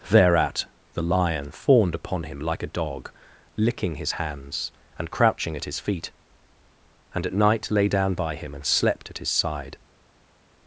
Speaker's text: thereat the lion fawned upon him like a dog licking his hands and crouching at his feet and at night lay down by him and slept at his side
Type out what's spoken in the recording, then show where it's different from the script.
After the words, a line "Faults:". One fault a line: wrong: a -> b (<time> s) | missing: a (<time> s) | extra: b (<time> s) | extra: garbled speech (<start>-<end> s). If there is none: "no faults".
thereat the lion fawned upon him like a dog licking his hands and crouching at his feet and at night lay down by him and slept at his side
Faults:
no faults